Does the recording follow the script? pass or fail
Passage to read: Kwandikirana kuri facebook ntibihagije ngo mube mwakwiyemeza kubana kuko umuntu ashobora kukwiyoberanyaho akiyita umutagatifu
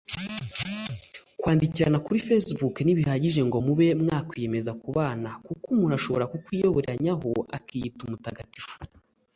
pass